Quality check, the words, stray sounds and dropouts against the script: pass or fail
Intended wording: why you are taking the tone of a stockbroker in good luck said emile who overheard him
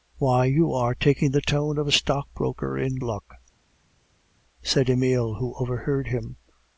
fail